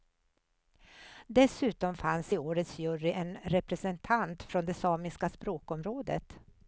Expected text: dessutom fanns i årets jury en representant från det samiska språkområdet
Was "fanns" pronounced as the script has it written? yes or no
yes